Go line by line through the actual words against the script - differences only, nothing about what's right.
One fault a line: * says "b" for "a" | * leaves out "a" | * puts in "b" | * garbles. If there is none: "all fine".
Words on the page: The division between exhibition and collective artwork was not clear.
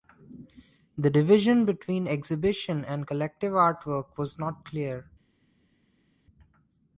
all fine